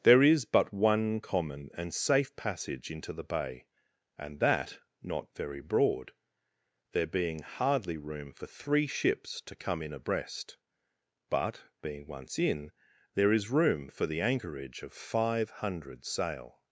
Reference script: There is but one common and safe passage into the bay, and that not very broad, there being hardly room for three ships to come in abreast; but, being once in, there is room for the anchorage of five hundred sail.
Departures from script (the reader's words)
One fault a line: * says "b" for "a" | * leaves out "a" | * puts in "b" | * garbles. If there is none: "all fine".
all fine